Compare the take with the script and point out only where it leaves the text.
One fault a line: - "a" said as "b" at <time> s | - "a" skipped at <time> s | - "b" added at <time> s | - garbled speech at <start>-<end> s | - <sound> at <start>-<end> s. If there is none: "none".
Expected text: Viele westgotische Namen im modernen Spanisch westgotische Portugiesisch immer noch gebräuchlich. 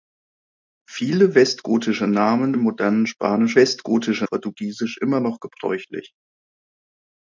none